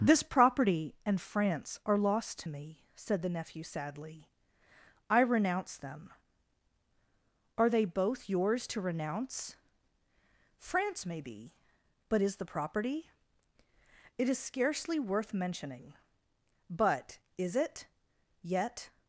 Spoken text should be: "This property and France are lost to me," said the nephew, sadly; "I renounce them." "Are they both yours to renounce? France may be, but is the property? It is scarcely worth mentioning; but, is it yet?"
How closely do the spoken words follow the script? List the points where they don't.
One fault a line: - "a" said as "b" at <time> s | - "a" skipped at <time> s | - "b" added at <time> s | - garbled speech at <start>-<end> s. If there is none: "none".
none